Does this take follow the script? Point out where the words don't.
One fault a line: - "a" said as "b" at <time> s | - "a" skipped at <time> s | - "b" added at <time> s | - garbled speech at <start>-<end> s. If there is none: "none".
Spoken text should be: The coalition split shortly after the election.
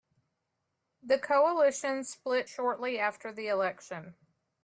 none